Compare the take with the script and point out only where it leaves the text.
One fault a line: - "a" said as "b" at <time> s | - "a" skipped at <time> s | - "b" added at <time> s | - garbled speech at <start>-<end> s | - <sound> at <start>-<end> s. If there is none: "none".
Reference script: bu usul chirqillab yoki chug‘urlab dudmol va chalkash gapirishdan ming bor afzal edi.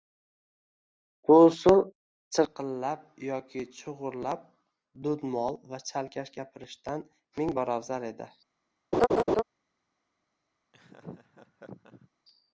- laugh at 8.9-9.4 s
- laugh at 10.7-12.1 s